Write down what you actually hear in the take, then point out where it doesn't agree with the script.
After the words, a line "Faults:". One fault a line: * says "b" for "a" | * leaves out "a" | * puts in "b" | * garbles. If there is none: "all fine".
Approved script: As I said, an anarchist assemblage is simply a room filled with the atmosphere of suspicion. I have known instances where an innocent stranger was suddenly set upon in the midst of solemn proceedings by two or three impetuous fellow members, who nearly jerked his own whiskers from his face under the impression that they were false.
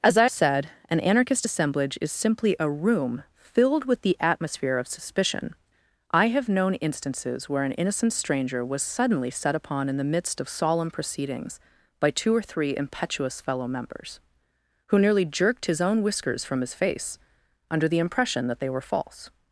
As I said, an anarchist assemblage is simply a room filled with the atmosphere of suspicion. I have known instances where an innocent stranger was suddenly set upon in the midst of solemn proceedings by two or three impetuous fellow members, who nearly jerked his own whiskers from his face under the impression that they were false.
Faults:
all fine